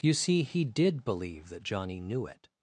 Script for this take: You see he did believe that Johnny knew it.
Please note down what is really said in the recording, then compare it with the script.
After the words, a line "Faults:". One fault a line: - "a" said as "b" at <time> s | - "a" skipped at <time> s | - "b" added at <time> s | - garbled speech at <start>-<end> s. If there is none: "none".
You see he did believe that Johnny knew it.
Faults:
none